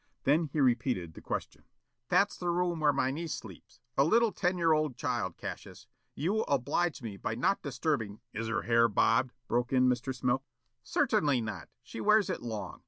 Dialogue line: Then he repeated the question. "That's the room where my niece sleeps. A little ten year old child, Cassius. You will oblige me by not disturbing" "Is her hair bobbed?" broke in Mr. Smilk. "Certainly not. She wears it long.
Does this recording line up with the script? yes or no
yes